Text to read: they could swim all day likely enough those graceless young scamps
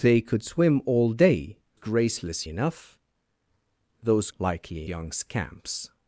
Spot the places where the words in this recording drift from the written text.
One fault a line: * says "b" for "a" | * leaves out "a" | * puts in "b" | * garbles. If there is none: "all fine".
* says "graceless" for "likely"
* says "likely" for "graceless"